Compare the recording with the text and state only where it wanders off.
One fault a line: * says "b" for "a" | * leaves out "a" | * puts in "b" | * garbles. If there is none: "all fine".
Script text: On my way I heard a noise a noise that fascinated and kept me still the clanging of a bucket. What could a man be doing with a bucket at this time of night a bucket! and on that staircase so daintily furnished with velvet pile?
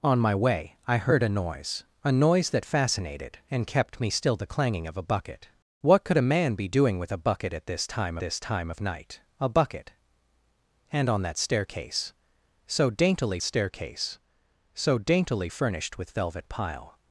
* puts in "this time"
* puts in "staircase so daintily"